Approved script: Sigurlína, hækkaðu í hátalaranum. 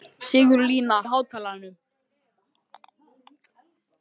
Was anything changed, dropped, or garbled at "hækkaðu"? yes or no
yes